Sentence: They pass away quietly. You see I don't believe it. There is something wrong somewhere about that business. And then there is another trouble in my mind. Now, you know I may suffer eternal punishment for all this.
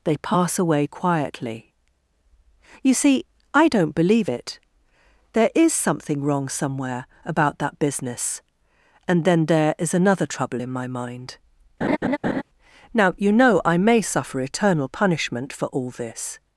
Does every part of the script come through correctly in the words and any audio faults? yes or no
no